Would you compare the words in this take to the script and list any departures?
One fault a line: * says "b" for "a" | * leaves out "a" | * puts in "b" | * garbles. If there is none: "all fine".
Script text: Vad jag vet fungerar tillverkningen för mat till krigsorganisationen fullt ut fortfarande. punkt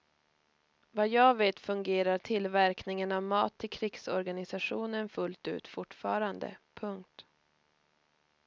* says "av" for "för"